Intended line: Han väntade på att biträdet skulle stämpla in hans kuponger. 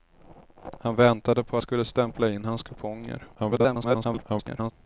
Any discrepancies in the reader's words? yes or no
yes